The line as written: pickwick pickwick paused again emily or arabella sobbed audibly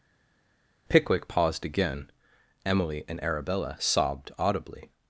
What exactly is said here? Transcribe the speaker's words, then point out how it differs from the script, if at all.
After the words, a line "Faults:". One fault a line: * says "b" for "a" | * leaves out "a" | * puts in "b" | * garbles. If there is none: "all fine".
pickwick paused again emily and arabella sobbed audibly
Faults:
* leaves out "pickwick"
* says "and" for "or"